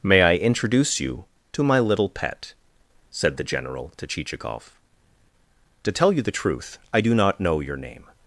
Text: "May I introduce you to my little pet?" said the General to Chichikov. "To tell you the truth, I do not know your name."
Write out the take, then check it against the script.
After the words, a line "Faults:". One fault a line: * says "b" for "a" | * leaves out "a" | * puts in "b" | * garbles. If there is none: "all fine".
"May I introduce you to my little pet?" said the General to Chichikov. "To tell you the truth, I do not know your name."
Faults:
all fine